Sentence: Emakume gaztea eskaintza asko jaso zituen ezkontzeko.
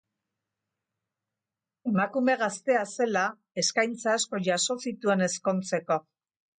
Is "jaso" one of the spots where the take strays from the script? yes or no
no